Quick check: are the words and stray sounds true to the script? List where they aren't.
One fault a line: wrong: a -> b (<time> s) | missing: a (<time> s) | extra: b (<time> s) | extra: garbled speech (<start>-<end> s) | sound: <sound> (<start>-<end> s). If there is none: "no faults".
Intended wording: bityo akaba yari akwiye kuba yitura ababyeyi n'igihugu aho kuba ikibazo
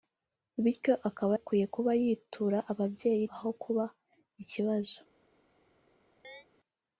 missing: yari (1.3 s)
missing: n'igihugu (3.2 s)
sound: chirp (6.2-6.5 s)